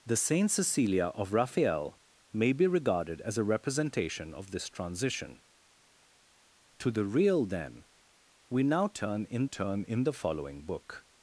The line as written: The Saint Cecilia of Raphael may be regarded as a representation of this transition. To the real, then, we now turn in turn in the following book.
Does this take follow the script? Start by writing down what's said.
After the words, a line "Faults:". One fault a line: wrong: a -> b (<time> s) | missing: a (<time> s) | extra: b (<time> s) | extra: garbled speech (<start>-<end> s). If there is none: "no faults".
The Saint Cecilia of Raphael may be regarded as a representation of this transition. To the real, then, we now turn in turn in the following book.
Faults:
no faults